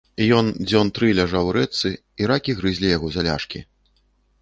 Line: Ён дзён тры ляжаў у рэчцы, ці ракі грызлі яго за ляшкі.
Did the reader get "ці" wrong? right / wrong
wrong